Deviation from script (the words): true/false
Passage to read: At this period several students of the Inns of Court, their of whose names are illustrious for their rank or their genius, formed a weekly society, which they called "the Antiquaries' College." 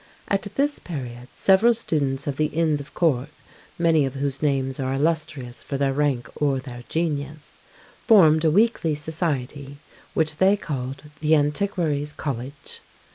true